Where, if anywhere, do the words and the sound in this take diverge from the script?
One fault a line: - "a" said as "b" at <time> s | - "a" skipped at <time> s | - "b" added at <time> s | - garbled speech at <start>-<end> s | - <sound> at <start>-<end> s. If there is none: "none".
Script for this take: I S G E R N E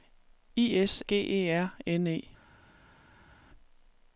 none